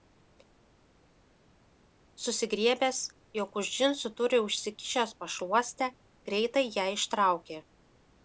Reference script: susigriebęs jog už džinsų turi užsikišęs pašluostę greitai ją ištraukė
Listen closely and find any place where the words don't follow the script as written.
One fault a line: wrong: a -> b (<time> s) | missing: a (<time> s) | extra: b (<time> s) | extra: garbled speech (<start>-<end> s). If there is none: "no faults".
no faults